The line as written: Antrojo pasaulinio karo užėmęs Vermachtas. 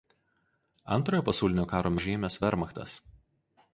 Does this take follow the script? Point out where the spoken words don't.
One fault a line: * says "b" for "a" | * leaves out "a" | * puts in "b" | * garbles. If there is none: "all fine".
all fine